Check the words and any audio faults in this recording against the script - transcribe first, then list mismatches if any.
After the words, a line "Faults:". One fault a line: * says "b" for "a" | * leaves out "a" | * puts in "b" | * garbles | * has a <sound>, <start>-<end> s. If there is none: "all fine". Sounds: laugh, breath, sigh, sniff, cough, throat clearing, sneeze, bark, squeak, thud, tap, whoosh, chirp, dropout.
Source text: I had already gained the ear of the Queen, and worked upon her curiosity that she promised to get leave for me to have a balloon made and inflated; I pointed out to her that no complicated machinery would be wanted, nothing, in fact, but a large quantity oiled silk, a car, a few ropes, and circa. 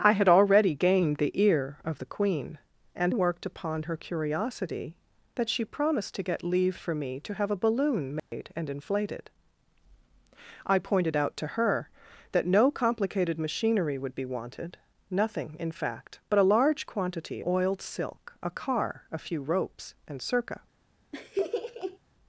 I had already gained the ear of the Queen, and worked upon her curiosity that she promised to get leave for me to have a balloon made and inflated; I pointed out to her that no complicated machinery would be wanted, nothing, in fact, but a large quantity oiled silk, a car, a few ropes, and circa.
Faults:
* has a dropout, 8.2-8.3 s
* has a laugh, 21.1-22.0 s